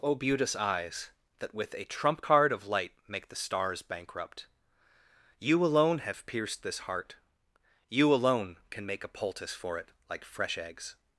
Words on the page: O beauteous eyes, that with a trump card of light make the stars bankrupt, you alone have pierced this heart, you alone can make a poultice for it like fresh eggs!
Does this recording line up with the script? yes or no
yes